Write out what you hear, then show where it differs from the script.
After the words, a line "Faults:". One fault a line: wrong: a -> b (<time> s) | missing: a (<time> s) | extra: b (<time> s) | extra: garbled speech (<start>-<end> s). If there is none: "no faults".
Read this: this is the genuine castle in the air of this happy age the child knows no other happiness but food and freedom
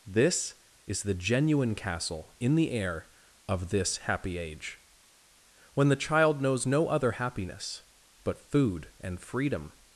this is the genuine castle in the air of this happy age when the child knows no other happiness but food and freedom
Faults:
extra: when (5.7 s)